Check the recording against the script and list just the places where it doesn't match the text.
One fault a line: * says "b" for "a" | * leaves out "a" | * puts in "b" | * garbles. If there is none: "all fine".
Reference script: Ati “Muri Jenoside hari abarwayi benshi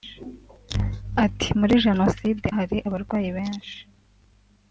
all fine